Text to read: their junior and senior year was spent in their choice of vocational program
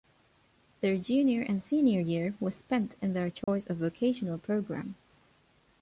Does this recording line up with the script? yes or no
yes